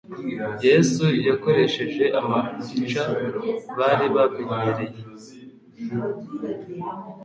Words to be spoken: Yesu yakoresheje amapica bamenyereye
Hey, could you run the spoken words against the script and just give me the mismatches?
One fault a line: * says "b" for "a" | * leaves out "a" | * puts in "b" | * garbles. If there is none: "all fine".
* puts in "bari"